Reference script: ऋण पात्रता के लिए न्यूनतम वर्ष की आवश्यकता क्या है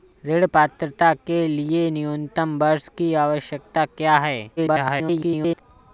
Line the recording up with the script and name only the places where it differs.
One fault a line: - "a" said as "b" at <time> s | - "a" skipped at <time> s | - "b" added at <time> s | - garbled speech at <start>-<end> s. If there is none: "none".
- garbled speech at 4.6-5.6 s